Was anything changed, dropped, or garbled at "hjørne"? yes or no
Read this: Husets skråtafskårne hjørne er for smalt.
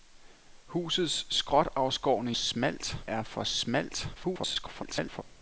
yes